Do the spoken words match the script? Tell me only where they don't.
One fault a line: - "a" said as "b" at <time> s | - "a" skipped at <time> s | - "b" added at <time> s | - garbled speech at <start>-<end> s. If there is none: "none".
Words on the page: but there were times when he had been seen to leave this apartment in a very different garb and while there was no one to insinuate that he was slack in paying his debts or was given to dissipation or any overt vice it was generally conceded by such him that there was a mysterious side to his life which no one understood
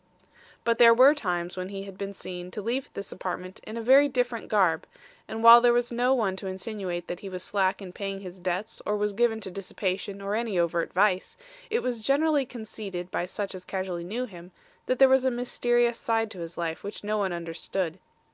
- "as casually knew" added at 13.5 s